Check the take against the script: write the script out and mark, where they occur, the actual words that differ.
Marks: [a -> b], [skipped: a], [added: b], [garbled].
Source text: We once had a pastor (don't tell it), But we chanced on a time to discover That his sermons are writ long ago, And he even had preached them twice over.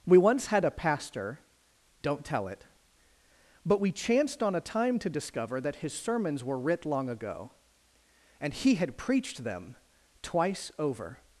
We once had a pastor (don't tell it), But we chanced on a time to discover That his sermons [are -> were] writ long ago, And he [skipped: even] had preached them twice over.